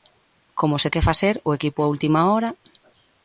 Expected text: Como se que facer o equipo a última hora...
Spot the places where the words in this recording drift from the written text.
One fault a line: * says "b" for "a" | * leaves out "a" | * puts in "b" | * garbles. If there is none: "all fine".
all fine